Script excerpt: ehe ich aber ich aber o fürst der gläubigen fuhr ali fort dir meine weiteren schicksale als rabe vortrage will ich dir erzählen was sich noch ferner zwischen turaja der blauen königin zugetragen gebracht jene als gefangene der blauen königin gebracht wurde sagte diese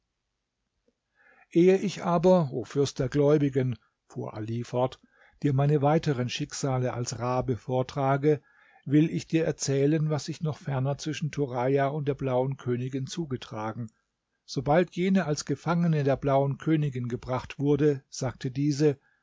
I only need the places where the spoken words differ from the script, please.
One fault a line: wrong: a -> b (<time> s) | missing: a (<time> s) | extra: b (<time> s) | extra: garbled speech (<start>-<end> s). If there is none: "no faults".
missing: ich aber (2.5 s)
extra: und (11.9 s)
wrong: gebracht -> sobald (14.4 s)